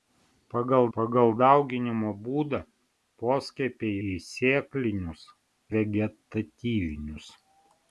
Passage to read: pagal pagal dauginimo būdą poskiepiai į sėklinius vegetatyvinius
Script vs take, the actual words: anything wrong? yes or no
no